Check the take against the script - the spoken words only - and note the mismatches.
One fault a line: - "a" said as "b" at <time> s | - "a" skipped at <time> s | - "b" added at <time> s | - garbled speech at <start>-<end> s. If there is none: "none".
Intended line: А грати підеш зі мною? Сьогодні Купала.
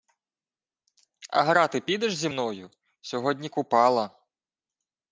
none